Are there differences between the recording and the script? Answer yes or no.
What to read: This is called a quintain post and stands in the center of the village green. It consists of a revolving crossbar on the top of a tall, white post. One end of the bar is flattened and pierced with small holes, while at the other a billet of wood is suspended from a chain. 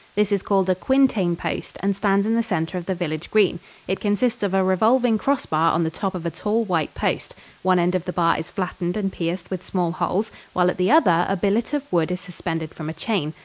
no